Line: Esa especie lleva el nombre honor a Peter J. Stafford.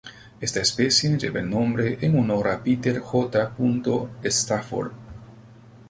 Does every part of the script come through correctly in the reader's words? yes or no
no